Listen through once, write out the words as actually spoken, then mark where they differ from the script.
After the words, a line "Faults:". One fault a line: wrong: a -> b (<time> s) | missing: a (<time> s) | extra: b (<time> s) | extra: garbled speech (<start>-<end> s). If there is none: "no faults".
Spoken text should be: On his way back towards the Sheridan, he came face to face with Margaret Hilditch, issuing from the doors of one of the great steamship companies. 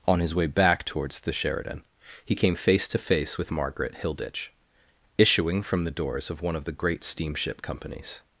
On his way back towards the Sheridan, he came face to face with Margaret Hilditch, issuing from the doors of one of the great steamship companies.
Faults:
no faults